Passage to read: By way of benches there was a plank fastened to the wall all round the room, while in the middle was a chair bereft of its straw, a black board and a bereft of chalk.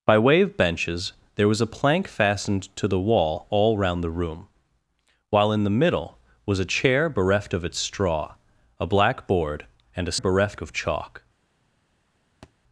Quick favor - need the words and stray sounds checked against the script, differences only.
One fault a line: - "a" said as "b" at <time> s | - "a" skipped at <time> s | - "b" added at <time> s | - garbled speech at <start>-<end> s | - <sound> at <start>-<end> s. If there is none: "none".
- thud at 12.4-12.5 s